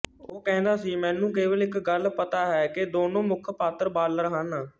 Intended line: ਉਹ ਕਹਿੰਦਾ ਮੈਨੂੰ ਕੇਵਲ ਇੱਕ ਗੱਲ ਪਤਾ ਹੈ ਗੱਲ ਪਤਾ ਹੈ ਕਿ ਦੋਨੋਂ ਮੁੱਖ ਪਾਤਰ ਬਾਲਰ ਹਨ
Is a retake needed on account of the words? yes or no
yes